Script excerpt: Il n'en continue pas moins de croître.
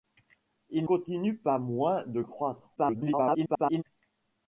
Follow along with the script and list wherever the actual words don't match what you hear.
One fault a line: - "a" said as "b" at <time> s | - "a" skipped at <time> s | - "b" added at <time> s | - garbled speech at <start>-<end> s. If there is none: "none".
- "n'en" skipped at 0.9 s
- garbled speech at 2.8-3.8 s